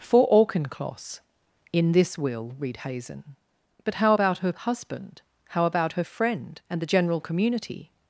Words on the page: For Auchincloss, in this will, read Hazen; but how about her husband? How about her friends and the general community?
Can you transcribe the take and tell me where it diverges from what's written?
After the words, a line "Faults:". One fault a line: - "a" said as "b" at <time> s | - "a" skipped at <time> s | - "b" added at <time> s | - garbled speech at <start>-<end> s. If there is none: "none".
For Auchincloss, in this will, read Hazen; but how about her husband? How about her friend and the general community?
Faults:
- "friends" said as "friend" at 6.0 s